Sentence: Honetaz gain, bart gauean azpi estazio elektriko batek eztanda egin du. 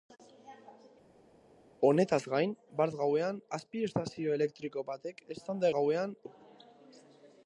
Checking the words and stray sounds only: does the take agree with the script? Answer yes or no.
no